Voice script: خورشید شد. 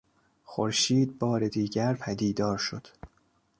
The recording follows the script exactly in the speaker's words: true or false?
false